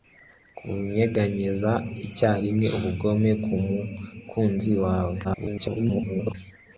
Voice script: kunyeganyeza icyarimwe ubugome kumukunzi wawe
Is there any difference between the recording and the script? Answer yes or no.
yes